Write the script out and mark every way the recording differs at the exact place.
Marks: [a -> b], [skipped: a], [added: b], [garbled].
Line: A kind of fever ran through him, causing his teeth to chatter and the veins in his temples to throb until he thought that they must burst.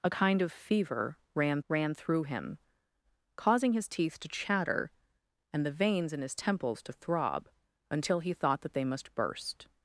A kind of fever ran [added: ran] through him, causing his teeth to chatter and the veins in his temples to throb until he thought that they must burst.